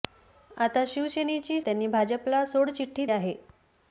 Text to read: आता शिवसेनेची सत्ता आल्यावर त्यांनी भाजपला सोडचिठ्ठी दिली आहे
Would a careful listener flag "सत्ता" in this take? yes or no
yes